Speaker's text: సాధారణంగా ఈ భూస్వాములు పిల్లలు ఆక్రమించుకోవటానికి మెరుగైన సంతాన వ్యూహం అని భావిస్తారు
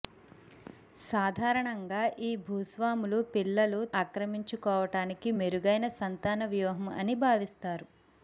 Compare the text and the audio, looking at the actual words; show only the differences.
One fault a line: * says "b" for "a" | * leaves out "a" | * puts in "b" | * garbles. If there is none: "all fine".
all fine